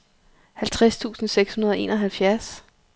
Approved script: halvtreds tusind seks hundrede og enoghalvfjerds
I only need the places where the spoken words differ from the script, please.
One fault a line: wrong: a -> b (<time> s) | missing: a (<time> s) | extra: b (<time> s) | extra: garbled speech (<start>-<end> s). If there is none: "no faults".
no faults